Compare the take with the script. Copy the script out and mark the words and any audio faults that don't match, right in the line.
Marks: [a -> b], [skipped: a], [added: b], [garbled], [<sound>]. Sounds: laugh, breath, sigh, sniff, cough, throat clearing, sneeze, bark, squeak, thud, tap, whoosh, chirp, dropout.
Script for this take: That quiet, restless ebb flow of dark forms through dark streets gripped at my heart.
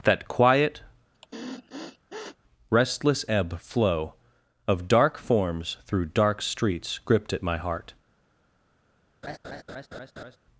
That quiet, [sniff] restless ebb flow of dark forms through dark streets gripped at my heart. [laugh]